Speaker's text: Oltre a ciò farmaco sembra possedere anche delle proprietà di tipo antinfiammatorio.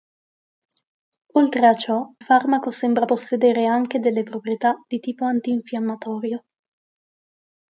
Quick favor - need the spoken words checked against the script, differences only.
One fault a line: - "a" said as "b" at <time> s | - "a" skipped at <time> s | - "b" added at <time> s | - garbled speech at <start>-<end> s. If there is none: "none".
none